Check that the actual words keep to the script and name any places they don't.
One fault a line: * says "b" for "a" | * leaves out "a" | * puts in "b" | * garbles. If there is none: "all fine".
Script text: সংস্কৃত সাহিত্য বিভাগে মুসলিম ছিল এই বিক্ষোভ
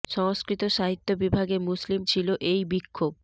all fine